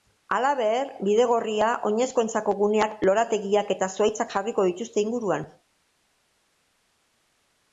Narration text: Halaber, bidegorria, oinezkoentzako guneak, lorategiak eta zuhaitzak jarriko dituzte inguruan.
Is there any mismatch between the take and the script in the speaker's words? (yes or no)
no